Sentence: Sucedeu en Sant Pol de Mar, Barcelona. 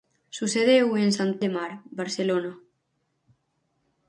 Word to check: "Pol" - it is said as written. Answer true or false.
false